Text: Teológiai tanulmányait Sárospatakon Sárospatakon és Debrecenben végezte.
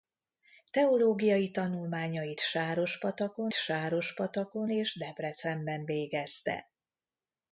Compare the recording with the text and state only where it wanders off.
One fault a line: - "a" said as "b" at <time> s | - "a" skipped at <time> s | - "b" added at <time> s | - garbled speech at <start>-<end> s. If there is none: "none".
none